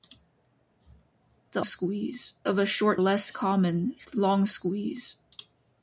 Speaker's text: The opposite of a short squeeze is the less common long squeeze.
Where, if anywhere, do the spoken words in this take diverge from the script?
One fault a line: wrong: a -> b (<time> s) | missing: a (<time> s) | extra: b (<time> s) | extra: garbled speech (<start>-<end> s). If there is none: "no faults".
wrong: opposite -> squeeze (1.6 s)
missing: squeeze is the (3.0 s)